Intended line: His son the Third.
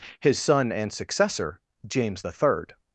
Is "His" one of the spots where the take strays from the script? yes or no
no